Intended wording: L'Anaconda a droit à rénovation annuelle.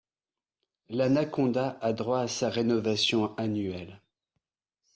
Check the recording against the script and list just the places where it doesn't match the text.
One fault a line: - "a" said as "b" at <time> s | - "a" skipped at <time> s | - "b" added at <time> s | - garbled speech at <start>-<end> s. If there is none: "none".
- "sa" added at 2.3 s